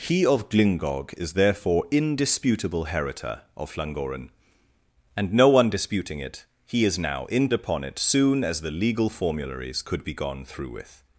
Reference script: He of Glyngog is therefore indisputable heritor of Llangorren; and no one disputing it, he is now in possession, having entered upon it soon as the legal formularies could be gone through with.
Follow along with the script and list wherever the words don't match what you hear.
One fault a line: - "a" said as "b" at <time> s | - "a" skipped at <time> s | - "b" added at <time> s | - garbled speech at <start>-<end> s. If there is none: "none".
- "possession having entered" skipped at 7.5 s